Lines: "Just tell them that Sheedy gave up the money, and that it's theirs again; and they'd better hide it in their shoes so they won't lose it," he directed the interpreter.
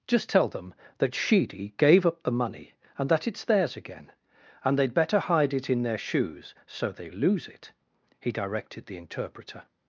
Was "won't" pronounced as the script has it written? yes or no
no